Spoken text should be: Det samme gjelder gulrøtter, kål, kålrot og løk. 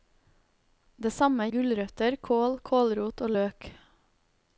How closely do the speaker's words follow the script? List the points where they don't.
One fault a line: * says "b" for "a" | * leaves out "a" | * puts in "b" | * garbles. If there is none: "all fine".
* leaves out "gjelder"